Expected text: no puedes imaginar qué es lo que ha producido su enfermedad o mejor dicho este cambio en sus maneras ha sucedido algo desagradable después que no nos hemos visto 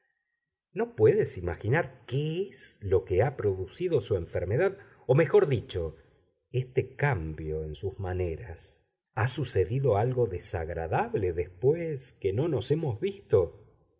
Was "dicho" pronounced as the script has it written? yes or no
yes